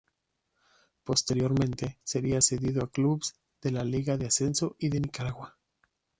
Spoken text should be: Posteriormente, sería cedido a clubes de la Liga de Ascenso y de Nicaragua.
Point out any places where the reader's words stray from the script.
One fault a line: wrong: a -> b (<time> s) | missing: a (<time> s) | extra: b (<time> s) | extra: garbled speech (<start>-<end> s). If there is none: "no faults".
no faults